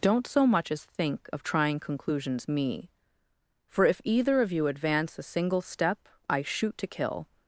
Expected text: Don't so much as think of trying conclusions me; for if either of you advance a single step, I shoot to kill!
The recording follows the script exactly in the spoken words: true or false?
true